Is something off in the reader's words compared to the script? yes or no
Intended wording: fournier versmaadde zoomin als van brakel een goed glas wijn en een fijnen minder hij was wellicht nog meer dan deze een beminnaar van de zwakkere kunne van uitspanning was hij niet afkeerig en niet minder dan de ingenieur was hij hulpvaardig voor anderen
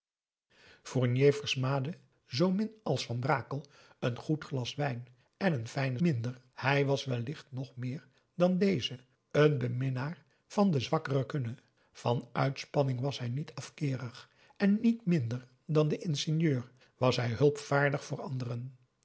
no